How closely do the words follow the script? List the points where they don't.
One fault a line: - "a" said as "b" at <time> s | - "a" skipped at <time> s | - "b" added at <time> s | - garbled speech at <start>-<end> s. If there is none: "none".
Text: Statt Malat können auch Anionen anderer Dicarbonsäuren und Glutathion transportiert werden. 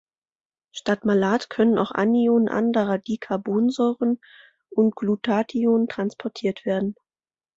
none